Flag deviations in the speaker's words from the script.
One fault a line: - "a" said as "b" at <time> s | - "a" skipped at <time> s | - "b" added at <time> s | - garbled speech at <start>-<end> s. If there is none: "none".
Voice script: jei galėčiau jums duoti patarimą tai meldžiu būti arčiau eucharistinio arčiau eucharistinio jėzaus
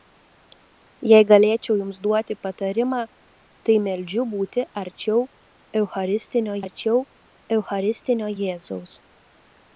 none